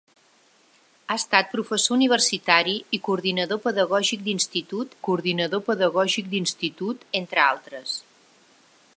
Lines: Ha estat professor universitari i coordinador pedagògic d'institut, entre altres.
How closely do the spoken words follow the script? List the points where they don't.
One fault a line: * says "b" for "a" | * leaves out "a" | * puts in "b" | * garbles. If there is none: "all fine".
* puts in "coordinador pedagògic d'institut"